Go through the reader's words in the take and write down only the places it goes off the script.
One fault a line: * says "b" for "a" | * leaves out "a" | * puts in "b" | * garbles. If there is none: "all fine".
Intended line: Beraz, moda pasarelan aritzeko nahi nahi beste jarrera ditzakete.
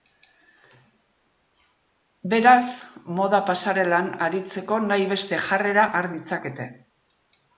* leaves out "nahi"
* puts in "har"